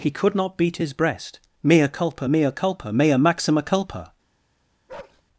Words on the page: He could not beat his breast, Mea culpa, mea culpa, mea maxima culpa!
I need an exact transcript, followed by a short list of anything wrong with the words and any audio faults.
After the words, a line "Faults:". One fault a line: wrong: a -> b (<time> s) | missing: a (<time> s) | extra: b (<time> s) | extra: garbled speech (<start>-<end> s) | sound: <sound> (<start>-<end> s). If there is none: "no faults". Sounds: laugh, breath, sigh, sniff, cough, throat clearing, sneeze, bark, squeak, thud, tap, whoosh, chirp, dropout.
He could not beat his breast, Mea culpa, mea culpa, mea maxima culpa!
Faults:
sound: bark (4.9-5.2 s)